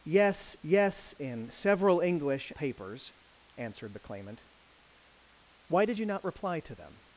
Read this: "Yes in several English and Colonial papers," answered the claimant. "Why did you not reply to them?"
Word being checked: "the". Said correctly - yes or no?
yes